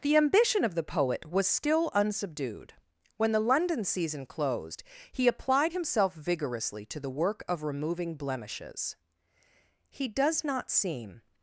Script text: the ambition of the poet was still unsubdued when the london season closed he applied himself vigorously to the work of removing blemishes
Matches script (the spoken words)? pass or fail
fail